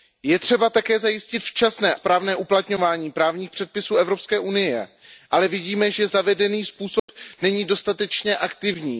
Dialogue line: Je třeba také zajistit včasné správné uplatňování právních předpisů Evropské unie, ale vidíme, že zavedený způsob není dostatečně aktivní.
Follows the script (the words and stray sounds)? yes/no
no